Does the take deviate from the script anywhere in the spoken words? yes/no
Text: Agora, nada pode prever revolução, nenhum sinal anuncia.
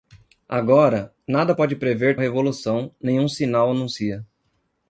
no